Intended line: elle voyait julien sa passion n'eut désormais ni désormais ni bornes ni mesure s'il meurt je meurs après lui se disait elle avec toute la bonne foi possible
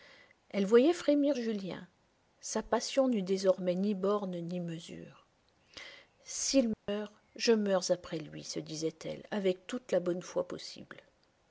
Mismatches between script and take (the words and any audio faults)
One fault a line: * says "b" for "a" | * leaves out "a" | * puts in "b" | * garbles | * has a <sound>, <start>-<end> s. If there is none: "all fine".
* puts in "frémir"
* leaves out "désormais ni"
* has a dropout, 6.7-6.9 s